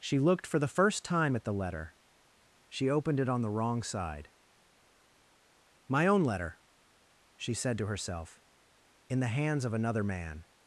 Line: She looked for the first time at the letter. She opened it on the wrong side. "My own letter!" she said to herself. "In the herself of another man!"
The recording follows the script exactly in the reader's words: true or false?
false